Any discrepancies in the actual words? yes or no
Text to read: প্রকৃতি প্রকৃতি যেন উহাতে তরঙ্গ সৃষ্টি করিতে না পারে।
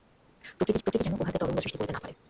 no